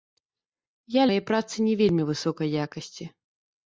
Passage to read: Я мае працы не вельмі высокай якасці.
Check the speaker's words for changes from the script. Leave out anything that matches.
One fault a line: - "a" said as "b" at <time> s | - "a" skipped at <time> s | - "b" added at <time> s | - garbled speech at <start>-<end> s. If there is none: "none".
none